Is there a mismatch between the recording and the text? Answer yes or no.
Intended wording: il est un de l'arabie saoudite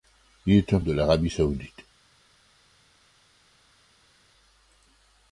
no